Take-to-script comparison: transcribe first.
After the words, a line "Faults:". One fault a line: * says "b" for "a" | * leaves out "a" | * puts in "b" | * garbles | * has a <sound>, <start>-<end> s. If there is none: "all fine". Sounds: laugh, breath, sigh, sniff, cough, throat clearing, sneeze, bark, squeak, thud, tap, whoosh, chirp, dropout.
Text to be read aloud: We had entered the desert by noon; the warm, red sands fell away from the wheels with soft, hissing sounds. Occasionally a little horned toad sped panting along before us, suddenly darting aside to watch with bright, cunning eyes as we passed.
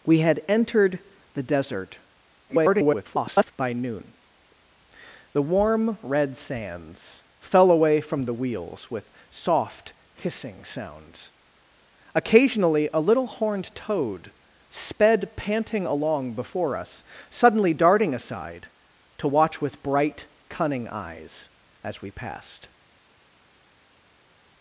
We had entered the desert [garbled] by noon; the warm, red sands fell away from the wheels with soft, hissing sounds. Occasionally a little horned toad sped panting along before us, suddenly darting aside to watch with bright, cunning eyes as we passed.
Faults:
* garbles